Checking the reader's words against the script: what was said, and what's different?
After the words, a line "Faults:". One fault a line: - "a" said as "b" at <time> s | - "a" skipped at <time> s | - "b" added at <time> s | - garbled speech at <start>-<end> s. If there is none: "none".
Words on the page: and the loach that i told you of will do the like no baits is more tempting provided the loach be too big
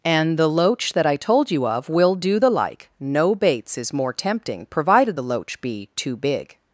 and the loach that i told you of will do the like no baits is more tempting provided the loach be too big
Faults:
none